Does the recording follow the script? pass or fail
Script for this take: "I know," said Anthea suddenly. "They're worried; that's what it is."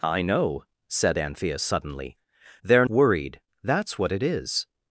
pass